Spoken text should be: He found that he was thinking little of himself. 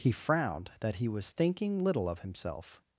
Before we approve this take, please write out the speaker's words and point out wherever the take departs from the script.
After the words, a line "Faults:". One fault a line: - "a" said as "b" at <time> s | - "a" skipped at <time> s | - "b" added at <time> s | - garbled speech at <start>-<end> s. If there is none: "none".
He frowned that he was thinking little of himself.
Faults:
- "found" said as "frowned" at 0.1 s